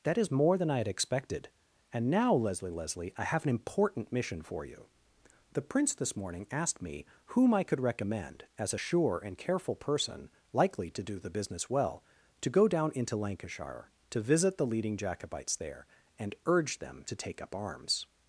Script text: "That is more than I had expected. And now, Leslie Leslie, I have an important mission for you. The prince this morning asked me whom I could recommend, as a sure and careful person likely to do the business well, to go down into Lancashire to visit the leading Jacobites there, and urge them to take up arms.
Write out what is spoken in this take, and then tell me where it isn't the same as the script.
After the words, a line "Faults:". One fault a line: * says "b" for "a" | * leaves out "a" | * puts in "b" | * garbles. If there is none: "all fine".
"That is more than I had expected. And now, Leslie Leslie, I have an important mission for you. The prince this morning asked me whom I could recommend, as a sure and careful person likely to do the business well, to go down into Lancashire to visit the leading Jacobites there, and urge them to take up arms.
Faults:
all fine